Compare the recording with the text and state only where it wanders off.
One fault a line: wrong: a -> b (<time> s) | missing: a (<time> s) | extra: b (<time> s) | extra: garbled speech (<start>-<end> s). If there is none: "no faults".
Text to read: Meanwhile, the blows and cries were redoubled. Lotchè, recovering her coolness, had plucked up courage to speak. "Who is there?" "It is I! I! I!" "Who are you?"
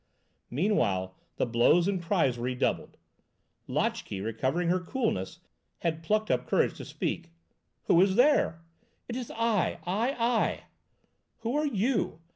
no faults